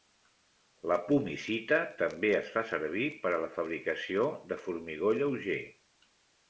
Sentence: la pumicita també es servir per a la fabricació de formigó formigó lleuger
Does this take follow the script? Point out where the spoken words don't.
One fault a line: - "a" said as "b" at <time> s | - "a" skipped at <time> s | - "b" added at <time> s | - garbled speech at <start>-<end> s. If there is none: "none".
- "fa" added at 2.5 s
- "formigó" skipped at 5.1 s